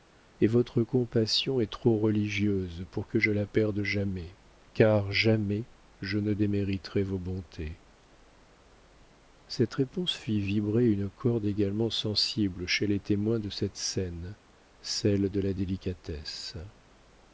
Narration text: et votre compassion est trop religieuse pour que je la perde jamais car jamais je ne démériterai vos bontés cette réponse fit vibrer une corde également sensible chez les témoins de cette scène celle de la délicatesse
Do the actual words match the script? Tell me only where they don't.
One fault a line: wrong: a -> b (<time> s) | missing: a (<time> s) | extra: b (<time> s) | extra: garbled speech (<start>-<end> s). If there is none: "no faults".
no faults